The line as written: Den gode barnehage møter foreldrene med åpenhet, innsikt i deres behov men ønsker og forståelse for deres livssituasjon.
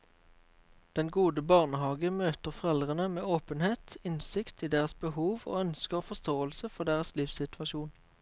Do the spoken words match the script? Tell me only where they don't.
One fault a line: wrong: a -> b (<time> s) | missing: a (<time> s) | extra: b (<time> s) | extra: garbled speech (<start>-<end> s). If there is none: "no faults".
wrong: men -> og (5.5 s)